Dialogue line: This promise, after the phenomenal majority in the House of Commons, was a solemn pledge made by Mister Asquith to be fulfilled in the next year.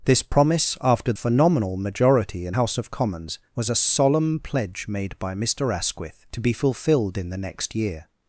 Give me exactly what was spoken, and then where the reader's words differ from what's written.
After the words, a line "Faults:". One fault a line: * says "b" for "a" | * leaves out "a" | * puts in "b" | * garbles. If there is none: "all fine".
This promise, after phenomenal majority in House of Commons, was a solemn pledge made by Mister Asquith to be fulfilled in the next year.
Faults:
* leaves out "the"
* leaves out "the"